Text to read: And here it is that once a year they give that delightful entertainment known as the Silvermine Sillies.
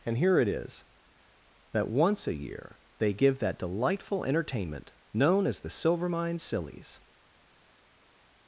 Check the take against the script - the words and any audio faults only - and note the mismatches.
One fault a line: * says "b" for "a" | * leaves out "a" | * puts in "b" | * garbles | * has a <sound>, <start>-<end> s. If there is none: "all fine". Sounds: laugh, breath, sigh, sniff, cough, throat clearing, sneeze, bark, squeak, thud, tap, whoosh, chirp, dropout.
all fine